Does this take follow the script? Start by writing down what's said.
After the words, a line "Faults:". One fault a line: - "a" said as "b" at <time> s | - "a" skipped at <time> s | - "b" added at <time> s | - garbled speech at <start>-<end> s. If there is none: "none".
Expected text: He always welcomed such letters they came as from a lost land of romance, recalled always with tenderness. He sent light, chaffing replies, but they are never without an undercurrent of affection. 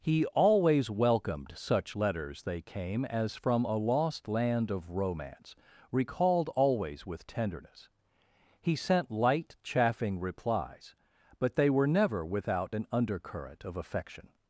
He always welcomed such letters they came as from a lost land of romance, recalled always with tenderness. He sent light, chaffing replies, but they were never without an undercurrent of affection.
Faults:
- "are" said as "were" at 11.7 s